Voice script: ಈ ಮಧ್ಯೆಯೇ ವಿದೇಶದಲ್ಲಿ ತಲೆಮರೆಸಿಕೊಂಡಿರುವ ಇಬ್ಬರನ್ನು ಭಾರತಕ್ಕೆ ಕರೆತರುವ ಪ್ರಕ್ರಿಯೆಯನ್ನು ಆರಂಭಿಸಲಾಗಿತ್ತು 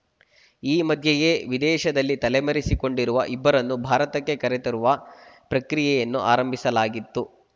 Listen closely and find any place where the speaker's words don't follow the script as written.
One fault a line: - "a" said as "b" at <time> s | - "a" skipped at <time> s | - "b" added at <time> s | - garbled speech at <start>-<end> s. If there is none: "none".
none